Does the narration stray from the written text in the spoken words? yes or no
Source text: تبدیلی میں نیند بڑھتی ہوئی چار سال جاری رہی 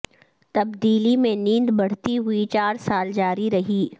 no